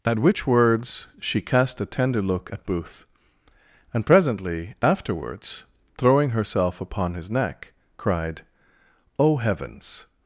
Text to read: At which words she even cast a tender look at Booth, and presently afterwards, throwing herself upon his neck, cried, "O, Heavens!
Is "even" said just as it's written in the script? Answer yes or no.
no